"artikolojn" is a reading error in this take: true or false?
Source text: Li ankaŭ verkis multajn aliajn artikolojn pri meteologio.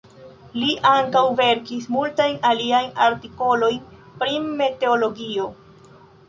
false